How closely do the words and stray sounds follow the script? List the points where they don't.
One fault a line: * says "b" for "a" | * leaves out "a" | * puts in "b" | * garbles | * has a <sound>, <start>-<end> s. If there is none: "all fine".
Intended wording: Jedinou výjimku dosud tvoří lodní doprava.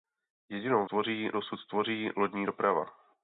* says "tvoří" for "výjimku"